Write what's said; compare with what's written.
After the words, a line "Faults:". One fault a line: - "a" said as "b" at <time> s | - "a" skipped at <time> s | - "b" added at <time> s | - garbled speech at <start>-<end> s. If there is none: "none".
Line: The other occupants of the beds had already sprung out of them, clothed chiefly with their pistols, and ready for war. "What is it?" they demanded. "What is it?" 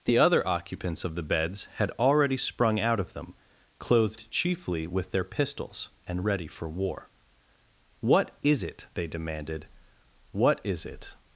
The other occupants of the beds had already sprung out of them, clothed chiefly with their pistols, and ready for war. "What is it?" they demanded. "What is it?"
Faults:
none